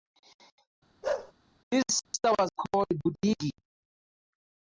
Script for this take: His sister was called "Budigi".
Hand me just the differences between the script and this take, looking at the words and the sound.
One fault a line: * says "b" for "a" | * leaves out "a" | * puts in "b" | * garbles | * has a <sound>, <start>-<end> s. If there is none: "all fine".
* has a bark, 1.0-1.3 s
* has a dropout, 2.0-2.1 s